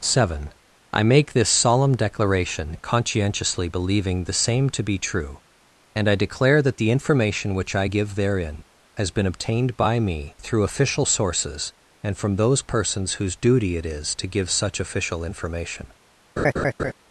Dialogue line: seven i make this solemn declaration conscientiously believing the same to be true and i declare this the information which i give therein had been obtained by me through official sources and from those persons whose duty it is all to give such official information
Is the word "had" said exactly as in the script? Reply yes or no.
no